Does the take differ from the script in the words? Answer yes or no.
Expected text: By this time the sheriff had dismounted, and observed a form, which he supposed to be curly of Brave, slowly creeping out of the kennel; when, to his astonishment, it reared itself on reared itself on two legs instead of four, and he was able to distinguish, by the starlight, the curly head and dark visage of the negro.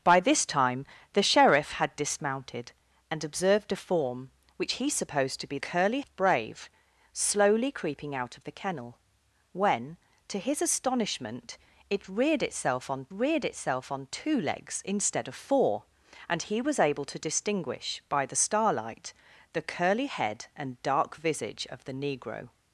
no